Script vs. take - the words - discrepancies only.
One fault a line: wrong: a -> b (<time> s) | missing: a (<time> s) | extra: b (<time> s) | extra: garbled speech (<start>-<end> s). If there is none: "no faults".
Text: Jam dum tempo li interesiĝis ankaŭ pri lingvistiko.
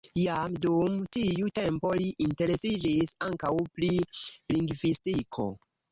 extra: tiu (1.2 s)